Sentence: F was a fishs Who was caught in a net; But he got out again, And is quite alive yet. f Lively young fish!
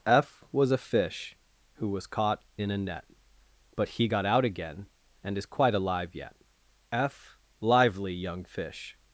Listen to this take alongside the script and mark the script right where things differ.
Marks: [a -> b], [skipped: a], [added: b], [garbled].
F was a [fishs -> fish] Who was caught in a net; But he got out again, And is quite alive yet. f Lively young fish!